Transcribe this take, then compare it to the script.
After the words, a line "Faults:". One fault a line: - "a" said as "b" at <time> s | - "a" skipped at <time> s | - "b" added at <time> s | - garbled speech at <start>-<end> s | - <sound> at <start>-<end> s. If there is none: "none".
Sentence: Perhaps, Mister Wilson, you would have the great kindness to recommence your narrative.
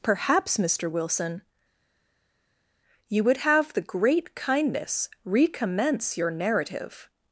Perhaps, Mister Wilson, you would have the great kindness recommence your narrative.
Faults:
- "to" skipped at 5.1 s